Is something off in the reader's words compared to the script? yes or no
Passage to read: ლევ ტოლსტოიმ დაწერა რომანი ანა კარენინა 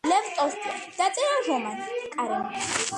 yes